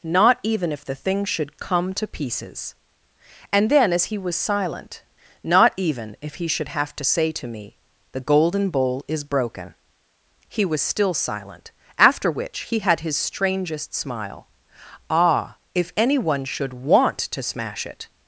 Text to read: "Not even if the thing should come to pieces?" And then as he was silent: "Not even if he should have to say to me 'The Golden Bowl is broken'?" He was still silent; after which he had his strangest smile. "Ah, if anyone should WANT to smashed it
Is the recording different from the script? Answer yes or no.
yes